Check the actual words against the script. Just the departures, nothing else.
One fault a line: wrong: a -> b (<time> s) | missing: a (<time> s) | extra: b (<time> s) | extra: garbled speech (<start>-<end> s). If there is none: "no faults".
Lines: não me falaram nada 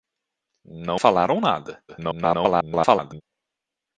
missing: me (1.0 s)
extra: garbled speech (1.9-3.2 s)